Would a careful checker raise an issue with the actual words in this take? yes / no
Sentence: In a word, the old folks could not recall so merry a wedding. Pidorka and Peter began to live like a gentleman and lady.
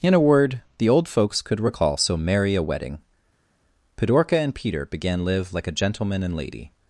yes